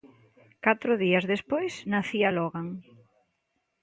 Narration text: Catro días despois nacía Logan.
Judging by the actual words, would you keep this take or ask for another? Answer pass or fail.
pass